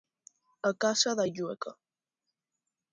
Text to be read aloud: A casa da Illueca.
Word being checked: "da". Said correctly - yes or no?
yes